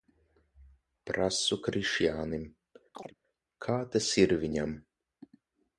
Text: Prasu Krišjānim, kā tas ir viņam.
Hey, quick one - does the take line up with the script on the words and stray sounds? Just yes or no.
no